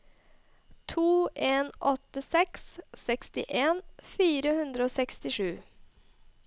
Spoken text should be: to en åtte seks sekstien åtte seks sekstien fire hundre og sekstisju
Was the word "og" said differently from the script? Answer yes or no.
no